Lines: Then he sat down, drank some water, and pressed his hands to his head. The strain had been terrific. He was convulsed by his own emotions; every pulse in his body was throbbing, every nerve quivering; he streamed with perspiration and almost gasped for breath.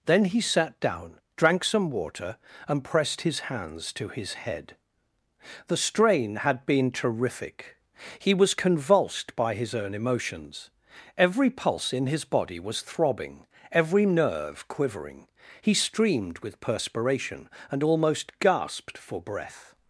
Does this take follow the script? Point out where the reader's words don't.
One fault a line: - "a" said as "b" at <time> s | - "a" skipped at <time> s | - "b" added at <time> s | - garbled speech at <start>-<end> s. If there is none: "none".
none